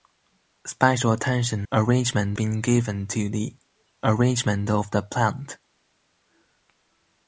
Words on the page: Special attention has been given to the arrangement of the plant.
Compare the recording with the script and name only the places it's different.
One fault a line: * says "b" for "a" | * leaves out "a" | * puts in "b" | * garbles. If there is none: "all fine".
* says "arrangement" for "has"